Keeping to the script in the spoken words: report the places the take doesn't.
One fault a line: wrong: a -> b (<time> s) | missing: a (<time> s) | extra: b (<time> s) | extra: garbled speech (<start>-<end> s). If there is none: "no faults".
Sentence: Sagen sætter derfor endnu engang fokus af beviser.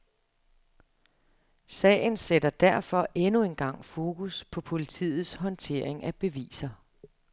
extra: på politiets håndtering (4.4 s)